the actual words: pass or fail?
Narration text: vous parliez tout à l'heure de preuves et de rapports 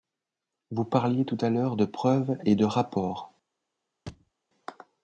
pass